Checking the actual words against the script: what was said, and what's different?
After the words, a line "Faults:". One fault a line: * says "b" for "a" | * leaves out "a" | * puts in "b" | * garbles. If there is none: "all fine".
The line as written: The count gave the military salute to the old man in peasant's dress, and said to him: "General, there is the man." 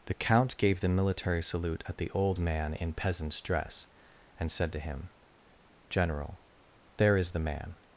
The count gave the military salute at the old man in peasant's dress, and said to him: "General, there is the man."
Faults:
* says "at" for "to"